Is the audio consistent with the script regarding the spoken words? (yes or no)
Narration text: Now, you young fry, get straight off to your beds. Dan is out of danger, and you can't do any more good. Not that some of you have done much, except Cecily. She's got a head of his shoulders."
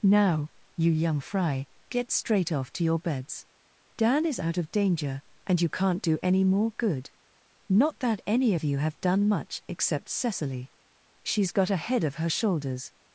no